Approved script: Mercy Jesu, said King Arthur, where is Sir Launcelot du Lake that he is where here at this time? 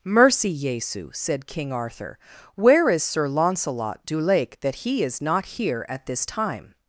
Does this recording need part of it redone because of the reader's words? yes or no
yes